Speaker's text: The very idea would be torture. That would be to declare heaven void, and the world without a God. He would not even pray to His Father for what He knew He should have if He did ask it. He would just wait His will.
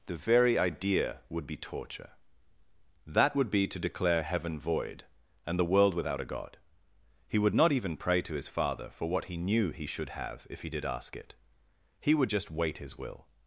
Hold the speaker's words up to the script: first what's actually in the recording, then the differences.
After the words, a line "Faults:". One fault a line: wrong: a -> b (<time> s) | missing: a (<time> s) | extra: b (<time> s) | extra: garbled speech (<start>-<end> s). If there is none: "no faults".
The very idea would be torture. That would be to declare heaven void, and the world without a God. He would not even pray to His Father for what He knew He should have if He did ask it. He would just wait His will.
Faults:
no faults